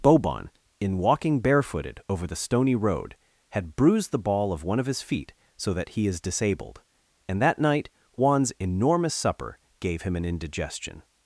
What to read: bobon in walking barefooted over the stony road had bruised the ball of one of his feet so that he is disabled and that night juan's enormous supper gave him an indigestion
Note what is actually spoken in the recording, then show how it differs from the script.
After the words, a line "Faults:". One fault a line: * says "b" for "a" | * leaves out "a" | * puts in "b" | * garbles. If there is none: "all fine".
bobon in walking barefooted over the stony road had bruised the ball of one of his feet so that he is disabled and that night juan's enormous supper gave him an indigestion
Faults:
all fine